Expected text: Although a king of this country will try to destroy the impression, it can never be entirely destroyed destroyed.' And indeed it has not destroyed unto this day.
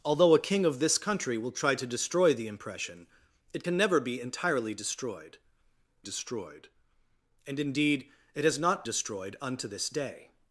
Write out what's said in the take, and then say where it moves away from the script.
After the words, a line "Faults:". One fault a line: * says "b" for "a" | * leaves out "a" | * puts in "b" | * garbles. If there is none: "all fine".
Although a king of this country will try to destroy the impression, it can never be entirely destroyed destroyed.' And indeed it has not destroyed unto this day.
Faults:
all fine